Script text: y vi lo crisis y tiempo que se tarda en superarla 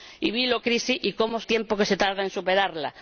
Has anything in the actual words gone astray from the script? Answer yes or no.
no